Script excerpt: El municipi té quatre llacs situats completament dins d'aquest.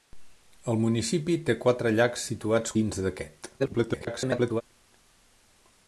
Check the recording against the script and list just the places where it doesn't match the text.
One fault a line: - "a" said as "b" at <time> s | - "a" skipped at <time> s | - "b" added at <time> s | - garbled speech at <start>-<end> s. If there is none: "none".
- "completament" skipped at 2.8 s
- garbled speech at 3.6-4.6 s